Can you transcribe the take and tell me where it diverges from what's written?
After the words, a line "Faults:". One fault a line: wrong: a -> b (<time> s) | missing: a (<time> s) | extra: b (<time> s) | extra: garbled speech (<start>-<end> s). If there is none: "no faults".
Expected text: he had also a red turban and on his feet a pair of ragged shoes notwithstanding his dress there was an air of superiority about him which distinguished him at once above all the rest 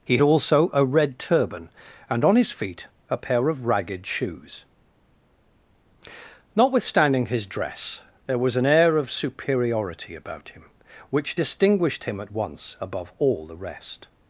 he also a red turban and on his feet a pair of ragged shoes notwithstanding his dress there was an air of superiority about him which distinguished him at once above all the rest
Faults:
missing: had (0.2 s)